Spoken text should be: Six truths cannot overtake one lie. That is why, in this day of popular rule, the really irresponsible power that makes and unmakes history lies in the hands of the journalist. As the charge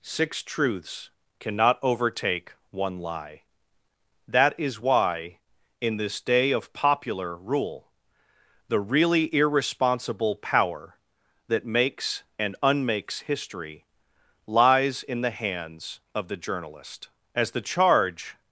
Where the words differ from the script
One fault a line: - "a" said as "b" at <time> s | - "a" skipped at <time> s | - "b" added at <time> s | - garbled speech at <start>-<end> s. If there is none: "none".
none